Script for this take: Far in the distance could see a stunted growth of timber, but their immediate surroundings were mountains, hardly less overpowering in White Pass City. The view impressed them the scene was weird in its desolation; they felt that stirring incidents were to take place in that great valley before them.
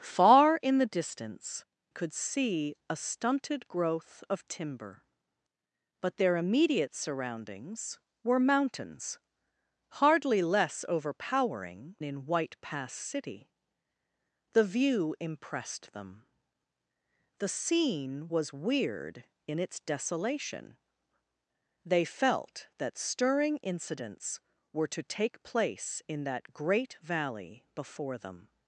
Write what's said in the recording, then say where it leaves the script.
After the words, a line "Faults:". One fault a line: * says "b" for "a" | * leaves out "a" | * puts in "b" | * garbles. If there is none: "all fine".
Far in the distance could see a stunted growth of timber, but their immediate surroundings were mountains, hardly less overpowering in White Pass City. The view impressed them the scene was weird in its desolation; they felt that stirring incidents were to take place in that great valley before them.
Faults:
all fine